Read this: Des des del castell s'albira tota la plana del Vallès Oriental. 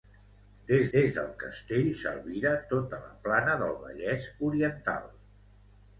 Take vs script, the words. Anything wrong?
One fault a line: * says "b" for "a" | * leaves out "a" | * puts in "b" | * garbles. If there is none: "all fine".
all fine